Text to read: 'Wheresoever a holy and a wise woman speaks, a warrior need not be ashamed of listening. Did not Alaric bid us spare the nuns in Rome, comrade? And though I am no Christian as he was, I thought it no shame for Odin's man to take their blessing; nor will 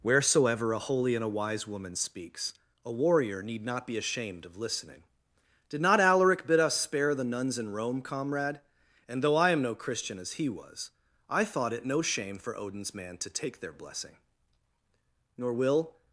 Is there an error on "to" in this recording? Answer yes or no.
no